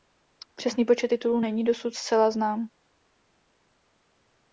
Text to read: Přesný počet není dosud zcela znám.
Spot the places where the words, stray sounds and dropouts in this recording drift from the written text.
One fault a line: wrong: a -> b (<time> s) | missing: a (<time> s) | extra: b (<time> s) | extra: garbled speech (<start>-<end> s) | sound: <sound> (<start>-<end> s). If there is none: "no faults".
extra: titulů (1.0 s)